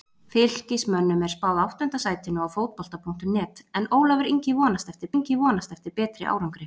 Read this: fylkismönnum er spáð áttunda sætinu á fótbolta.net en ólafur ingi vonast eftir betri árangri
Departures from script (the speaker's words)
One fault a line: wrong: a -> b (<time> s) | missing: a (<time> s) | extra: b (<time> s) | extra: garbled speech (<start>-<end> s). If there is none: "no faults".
extra: ingi vonast eftir (5.2 s)